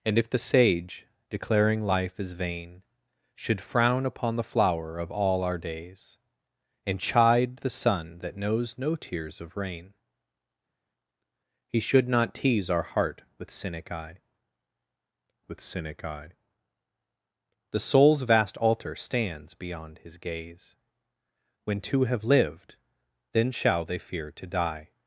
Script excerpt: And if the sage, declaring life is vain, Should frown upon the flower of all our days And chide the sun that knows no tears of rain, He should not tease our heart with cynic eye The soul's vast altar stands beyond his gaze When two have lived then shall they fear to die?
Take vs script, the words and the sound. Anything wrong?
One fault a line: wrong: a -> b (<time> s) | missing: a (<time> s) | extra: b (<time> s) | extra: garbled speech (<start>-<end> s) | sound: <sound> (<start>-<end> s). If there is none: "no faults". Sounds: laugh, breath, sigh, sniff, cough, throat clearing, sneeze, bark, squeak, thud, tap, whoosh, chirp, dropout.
extra: with cynic eye (15.5 s)